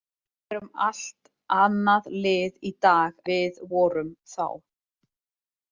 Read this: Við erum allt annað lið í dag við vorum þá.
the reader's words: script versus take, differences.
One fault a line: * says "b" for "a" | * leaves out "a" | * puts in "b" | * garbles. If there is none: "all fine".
all fine